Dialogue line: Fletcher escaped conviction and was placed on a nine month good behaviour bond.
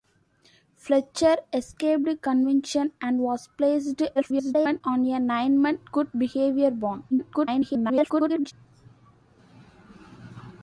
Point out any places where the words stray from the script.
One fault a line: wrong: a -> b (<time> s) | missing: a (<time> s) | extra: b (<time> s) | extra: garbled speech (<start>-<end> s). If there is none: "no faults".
extra: garbled speech (4.2-4.8 s)
extra: garbled speech (7.1-8.5 s)